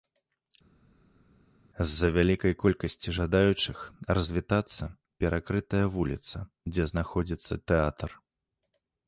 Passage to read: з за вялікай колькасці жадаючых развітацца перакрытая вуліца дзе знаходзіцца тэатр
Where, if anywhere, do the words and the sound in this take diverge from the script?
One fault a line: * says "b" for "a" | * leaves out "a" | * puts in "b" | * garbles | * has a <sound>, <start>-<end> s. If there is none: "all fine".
all fine